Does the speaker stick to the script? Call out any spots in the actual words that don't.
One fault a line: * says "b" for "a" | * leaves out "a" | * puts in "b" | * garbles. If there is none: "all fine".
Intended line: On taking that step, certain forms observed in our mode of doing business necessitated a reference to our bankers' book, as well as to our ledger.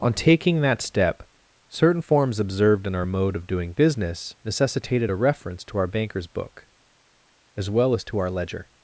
all fine